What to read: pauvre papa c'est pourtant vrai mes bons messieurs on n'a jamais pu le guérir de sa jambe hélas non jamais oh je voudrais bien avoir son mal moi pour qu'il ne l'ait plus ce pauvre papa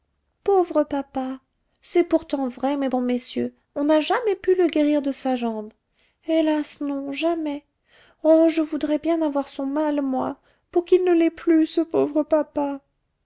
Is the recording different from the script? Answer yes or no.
no